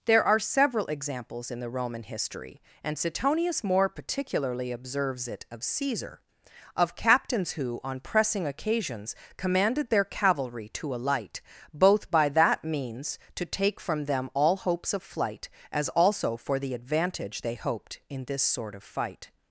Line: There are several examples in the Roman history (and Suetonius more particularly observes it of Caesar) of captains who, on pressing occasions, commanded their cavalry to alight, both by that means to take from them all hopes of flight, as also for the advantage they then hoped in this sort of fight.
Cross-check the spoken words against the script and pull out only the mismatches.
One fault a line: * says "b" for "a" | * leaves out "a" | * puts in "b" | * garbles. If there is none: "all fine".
* leaves out "then"